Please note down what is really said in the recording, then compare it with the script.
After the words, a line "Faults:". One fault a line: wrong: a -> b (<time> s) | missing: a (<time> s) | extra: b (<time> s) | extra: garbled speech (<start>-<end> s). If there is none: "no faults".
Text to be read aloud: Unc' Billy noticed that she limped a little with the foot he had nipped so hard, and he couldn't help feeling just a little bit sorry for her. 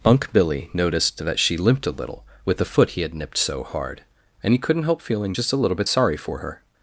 Unc' Billy noticed that she limped a little with the foot he had nipped so hard, and he couldn't help feeling just a little bit sorry for her.
Faults:
no faults